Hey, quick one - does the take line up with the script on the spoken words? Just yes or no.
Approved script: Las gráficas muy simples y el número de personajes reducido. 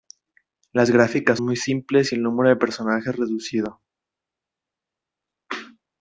yes